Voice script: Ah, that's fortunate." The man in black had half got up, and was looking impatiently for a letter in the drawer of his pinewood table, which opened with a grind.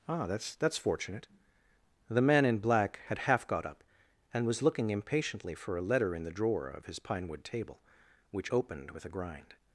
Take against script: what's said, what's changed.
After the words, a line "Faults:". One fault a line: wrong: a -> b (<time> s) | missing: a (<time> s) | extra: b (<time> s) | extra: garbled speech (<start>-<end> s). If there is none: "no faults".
Ah, that's that's fortunate." The man in black had half got up, and was looking impatiently for a letter in the drawer of his pinewood table, which opened with a grind.
Faults:
extra: that's (0.6 s)